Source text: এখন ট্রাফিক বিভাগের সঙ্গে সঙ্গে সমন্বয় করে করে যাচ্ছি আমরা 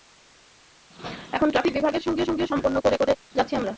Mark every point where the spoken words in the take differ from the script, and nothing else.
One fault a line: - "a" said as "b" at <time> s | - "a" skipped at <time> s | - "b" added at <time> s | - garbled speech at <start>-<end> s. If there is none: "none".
none